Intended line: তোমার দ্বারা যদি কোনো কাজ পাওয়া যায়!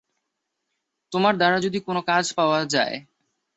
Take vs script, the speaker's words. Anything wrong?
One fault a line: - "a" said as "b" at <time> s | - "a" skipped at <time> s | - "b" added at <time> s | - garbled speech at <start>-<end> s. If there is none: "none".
none